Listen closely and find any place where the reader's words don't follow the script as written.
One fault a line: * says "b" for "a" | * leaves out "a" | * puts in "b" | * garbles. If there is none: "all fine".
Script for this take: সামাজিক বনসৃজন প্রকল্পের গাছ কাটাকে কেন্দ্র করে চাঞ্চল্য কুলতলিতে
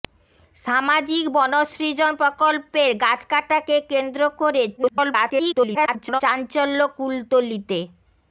* garbles